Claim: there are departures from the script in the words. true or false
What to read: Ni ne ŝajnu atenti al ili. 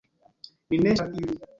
true